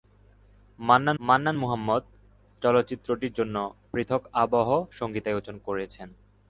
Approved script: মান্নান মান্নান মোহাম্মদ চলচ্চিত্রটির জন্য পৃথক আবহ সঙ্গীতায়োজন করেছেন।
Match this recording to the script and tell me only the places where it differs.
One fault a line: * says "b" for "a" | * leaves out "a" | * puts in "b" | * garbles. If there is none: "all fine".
all fine